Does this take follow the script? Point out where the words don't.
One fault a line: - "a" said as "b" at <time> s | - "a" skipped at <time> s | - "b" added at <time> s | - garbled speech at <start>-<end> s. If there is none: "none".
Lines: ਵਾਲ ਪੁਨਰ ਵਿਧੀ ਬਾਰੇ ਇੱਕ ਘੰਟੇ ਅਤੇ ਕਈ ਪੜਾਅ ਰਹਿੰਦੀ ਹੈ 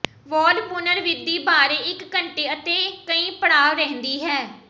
none